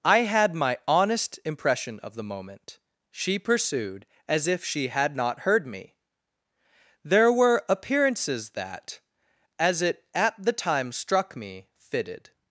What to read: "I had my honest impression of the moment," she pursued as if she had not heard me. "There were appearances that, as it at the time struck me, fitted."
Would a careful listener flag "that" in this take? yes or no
no